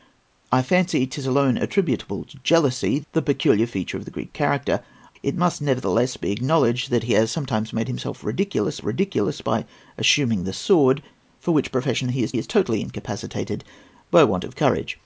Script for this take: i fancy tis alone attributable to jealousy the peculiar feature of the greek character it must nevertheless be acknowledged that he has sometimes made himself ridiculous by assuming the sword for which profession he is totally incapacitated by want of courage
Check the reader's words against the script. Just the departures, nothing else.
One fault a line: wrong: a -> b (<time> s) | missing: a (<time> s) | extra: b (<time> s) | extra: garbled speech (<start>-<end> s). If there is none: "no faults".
extra: ridiculous (8.8 s)
extra: is (12.4 s)